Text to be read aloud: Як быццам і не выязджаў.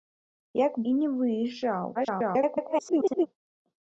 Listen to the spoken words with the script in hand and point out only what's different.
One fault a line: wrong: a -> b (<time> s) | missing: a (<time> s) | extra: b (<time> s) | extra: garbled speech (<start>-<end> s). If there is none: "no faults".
missing: быццам (0.8 s)
extra: garbled speech (1.9-3.3 s)